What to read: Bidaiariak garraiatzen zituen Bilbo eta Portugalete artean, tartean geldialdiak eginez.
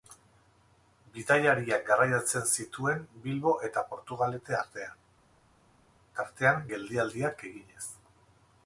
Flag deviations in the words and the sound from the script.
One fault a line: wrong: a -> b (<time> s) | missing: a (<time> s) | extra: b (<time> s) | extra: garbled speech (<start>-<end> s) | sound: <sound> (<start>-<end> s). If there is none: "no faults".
no faults